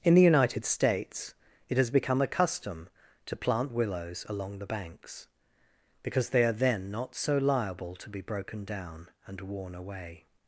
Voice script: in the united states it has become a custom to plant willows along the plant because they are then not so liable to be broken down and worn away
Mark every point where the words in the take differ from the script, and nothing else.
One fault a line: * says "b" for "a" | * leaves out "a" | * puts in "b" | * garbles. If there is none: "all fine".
* says "banks" for "plant"